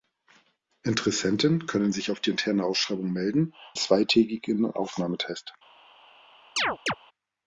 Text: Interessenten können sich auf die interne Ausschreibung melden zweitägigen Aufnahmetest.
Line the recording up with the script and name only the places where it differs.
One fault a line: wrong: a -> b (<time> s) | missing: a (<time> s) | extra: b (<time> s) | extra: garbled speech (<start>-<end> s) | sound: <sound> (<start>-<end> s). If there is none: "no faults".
sound: chirp (6.6-6.9 s)